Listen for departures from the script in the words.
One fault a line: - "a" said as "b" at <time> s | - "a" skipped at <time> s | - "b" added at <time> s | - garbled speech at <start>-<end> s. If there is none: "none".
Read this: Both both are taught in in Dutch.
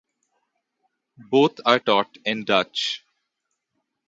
- "both" skipped at 1.6 s
- "in" skipped at 2.4 s